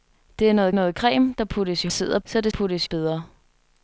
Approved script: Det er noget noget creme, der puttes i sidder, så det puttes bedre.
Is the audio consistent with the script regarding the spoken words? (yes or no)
yes